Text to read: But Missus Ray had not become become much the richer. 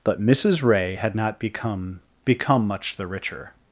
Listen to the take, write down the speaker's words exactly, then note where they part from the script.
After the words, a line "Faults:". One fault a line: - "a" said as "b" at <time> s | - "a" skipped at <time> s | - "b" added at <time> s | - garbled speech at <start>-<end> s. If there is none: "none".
But Missus Ray had not become become much the richer.
Faults:
none